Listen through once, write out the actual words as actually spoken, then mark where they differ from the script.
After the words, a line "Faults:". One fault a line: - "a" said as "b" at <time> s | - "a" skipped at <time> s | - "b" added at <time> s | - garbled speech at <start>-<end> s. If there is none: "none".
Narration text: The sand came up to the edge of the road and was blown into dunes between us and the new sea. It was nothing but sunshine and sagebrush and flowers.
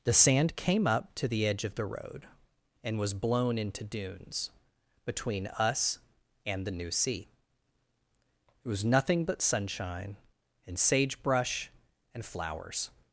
The sand came up to the edge of the road and was blown into dunes between us and the new sea. It was nothing but sunshine and sagebrush and flowers.
Faults:
none